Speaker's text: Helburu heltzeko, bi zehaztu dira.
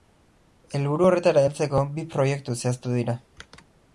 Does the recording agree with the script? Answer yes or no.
no